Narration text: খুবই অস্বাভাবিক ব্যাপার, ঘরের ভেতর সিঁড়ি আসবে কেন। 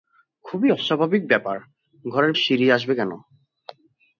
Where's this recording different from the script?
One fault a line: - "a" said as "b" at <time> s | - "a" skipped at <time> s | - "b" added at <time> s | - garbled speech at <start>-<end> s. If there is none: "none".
- "ভেতর" skipped at 2.3 s